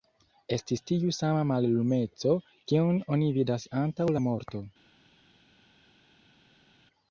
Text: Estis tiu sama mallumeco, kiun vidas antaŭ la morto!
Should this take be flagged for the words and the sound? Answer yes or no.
yes